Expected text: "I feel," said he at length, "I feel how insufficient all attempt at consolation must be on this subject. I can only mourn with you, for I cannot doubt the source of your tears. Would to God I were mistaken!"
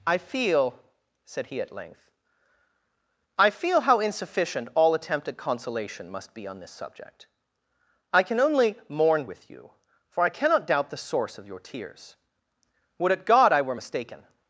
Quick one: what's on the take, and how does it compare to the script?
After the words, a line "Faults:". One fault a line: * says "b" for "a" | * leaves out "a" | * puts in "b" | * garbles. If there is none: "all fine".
"I feel," said he at length, "I feel how insufficient all attempt at consolation must be on this subject. I can only mourn with you, for I cannot doubt the source of your tears. Would at God I were mistaken!"
Faults:
* says "at" for "to"